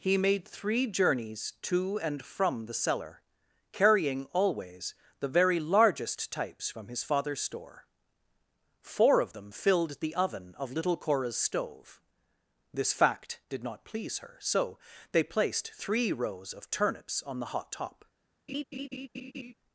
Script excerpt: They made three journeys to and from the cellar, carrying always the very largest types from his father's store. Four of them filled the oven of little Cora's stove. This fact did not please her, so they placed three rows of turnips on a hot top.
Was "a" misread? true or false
true